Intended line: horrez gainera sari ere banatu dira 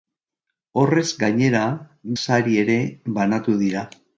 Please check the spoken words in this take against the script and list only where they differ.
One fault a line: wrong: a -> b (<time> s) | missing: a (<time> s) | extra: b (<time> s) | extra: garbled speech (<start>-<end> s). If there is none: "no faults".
no faults